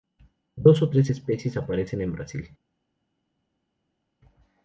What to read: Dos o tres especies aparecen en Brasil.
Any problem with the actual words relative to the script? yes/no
no